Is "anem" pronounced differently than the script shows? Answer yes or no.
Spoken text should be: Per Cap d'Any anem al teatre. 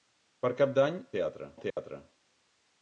yes